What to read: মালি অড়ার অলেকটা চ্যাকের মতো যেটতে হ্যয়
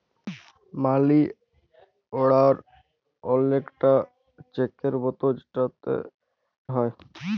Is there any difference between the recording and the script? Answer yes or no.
no